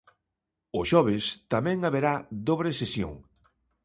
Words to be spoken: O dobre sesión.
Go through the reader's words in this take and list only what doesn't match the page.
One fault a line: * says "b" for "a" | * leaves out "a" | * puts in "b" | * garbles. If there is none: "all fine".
* puts in "xoves tamén haberá"